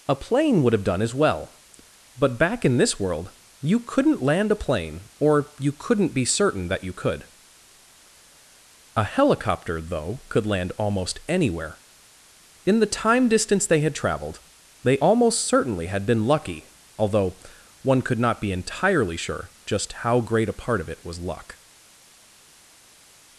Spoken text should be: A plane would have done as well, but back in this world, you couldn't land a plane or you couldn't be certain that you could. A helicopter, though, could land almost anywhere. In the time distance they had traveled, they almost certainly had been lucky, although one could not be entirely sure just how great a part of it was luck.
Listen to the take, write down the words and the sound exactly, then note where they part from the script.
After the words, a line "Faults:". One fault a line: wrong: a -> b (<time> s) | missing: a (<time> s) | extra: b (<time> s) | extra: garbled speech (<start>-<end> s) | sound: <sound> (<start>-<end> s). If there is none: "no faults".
A plane would have done as well, but back in this world, you couldn't land a plane or you couldn't be certain that you could. A helicopter, though, could land almost anywhere. In the time distance they had traveled, they almost certainly had been lucky, although one could not be entirely sure just how great a part of it was luck.
Faults:
no faults